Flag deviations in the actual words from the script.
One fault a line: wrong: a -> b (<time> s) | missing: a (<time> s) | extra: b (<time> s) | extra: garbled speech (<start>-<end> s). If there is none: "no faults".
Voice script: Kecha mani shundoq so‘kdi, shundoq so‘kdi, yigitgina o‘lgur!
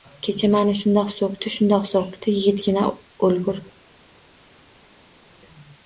no faults